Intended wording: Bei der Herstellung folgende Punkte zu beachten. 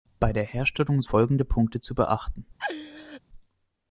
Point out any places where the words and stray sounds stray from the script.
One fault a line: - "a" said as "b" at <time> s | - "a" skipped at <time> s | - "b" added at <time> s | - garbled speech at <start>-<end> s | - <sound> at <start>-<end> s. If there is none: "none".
- laugh at 2.6-3.2 s